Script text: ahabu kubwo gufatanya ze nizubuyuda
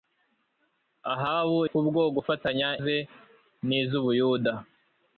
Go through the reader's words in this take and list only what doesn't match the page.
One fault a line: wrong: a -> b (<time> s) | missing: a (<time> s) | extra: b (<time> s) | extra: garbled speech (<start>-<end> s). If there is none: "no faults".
no faults